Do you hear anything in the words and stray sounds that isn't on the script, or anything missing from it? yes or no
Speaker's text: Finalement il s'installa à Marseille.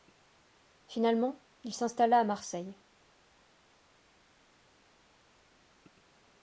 no